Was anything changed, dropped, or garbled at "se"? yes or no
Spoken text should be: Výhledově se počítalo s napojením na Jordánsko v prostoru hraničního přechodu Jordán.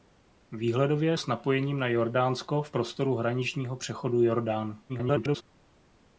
yes